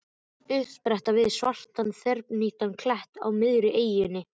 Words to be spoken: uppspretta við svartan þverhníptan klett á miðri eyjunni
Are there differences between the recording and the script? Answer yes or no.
no